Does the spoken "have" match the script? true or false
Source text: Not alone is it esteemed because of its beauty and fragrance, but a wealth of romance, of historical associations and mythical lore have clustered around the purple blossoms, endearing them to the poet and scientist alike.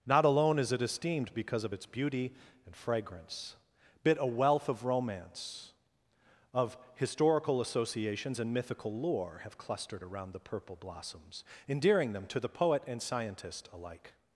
true